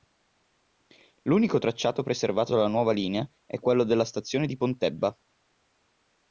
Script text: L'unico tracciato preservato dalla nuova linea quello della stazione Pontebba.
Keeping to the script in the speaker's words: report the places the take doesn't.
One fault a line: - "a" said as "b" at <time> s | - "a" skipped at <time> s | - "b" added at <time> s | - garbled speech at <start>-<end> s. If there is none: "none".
- "è" added at 3.5 s
- "di" added at 4.4 s